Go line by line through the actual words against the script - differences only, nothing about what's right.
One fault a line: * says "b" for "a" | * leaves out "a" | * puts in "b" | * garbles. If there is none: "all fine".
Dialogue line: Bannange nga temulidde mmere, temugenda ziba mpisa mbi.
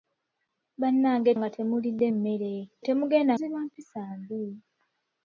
all fine